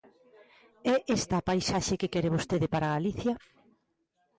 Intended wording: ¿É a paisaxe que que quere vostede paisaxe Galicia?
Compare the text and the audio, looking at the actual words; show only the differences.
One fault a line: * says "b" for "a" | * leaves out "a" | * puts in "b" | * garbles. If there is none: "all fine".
* puts in "esta"
* leaves out "que"
* says "para" for "paisaxe"